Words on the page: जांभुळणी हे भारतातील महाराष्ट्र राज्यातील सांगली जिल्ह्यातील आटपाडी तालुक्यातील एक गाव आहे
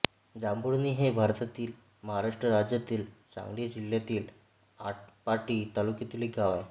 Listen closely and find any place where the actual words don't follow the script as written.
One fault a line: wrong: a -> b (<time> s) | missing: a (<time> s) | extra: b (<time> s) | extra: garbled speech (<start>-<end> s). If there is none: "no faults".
no faults